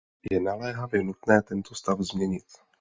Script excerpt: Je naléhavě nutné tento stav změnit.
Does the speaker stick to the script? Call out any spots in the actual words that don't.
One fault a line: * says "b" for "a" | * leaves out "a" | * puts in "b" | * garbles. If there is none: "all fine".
all fine